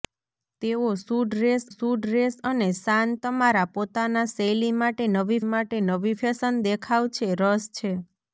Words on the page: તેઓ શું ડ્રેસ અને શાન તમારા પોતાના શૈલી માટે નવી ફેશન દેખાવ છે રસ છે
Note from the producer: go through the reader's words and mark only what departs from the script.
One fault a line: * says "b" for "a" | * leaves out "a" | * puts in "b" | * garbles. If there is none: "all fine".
* puts in "શું ડ્રેસ"
* puts in "માટે નવી"